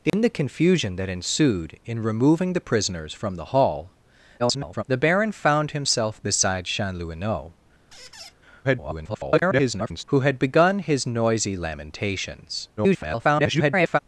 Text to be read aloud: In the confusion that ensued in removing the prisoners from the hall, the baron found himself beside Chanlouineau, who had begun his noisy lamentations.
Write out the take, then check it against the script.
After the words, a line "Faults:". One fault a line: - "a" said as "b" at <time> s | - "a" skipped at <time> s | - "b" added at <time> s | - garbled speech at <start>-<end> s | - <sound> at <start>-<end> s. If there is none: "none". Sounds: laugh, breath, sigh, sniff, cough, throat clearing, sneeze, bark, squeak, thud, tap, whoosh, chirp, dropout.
In the confusion that ensued in removing the prisoners from the hall, [garbled] the baron found himself beside Chanlouineau, [garbled] who had begun his noisy lamentations. [garbled]
Faults:
- dropout at 0.1-0.1 s
- garbled speech at 4.4-4.8 s
- squeak at 7.9-8.3 s
- garbled speech at 8.6-10.0 s
- garbled speech at 12.8-14.0 s